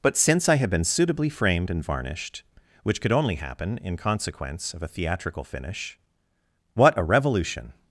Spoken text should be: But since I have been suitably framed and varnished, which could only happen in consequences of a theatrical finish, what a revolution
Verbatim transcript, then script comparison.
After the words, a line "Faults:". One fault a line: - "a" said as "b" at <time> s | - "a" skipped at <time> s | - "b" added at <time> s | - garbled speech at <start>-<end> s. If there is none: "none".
But since I have been suitably framed and varnished, which could only happen in consequence of a theatrical finish, what a revolution
Faults:
- "consequences" said as "consequence" at 4.0 s